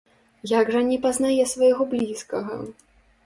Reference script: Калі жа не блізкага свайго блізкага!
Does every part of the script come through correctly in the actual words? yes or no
no